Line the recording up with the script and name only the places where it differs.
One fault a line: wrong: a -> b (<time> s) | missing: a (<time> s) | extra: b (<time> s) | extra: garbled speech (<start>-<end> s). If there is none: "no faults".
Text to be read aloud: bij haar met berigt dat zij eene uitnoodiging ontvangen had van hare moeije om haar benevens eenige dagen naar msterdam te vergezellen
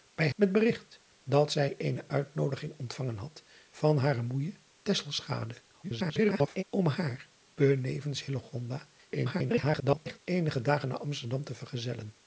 missing: haar (0.3 s)
extra: garbled speech (5.8-6.6 s)
extra: garbled speech (9.1-10.2 s)